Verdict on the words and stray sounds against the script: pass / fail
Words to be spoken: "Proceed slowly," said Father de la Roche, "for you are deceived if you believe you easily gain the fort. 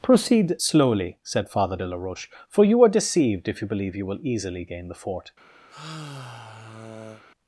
fail